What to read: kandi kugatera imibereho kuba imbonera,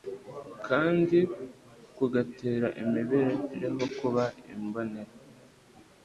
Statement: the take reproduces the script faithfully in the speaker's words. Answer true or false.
true